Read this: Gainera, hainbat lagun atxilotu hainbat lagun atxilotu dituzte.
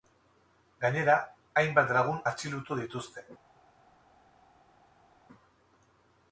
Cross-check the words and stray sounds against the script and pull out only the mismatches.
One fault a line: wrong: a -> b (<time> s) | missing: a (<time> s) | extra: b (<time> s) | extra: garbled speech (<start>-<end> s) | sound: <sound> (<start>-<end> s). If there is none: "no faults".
missing: hainbat lagun atxilotu (2.8 s)